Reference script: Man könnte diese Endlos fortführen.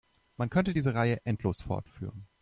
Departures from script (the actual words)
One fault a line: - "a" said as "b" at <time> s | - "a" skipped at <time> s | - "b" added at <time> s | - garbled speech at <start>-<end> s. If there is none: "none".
- "Reihe" added at 0.9 s